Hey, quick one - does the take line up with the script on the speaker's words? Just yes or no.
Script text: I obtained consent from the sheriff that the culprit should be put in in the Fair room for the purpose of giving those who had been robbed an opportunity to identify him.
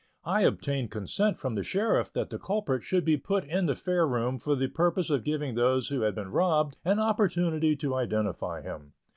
no